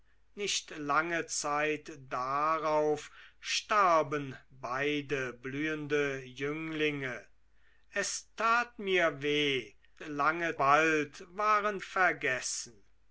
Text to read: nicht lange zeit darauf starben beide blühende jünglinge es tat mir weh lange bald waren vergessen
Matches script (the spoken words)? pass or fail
pass